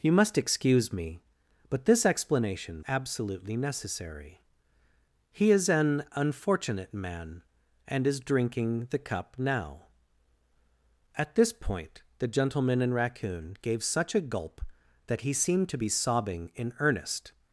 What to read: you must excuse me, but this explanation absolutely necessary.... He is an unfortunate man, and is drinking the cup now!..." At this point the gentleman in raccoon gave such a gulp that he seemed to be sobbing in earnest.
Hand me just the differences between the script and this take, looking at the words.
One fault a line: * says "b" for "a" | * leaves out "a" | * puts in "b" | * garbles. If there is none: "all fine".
all fine